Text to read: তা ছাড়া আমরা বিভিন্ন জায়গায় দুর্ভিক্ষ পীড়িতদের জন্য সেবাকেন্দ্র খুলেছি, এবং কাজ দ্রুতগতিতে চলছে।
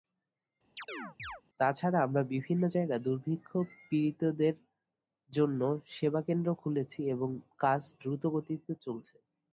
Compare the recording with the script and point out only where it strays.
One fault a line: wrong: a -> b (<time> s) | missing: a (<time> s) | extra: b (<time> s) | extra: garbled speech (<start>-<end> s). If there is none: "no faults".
no faults